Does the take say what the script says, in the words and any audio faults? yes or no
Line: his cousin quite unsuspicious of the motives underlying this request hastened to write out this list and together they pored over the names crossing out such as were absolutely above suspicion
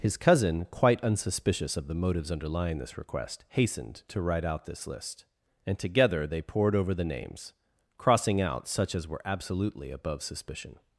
yes